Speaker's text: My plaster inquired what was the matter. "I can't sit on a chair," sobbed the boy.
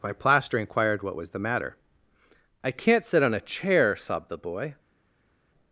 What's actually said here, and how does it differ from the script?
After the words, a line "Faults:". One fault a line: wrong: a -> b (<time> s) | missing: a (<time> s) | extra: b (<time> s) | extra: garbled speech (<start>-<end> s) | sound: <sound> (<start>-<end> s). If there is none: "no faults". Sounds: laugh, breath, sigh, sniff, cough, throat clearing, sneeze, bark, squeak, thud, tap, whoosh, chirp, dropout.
My plaster inquired what was the matter. "I can't sit on a chair," sobbed the boy.
Faults:
no faults